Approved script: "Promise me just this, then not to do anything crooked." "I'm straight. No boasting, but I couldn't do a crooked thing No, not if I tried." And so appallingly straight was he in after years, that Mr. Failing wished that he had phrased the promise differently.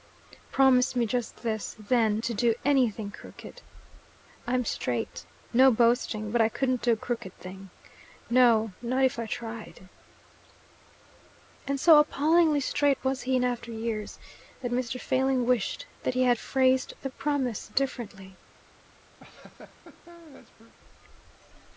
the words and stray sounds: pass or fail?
fail